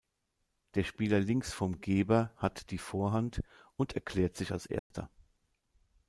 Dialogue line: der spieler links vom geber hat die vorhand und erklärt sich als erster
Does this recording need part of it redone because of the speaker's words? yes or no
no